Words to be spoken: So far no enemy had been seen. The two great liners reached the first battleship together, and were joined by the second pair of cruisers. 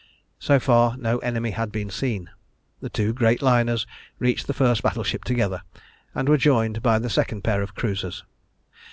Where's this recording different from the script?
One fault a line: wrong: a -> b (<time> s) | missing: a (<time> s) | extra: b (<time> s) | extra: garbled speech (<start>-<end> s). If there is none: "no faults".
no faults